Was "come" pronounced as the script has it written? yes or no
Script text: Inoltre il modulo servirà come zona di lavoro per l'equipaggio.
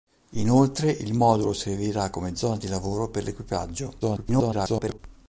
yes